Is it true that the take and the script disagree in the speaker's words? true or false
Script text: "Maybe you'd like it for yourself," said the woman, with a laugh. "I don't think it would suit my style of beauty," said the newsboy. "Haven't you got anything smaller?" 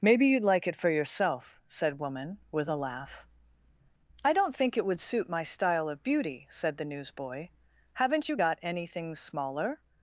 true